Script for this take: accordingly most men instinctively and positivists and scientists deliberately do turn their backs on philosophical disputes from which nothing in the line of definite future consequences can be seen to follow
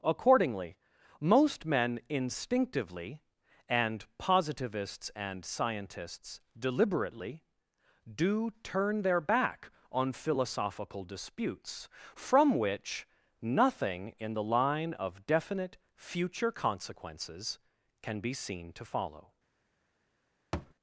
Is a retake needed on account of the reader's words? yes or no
yes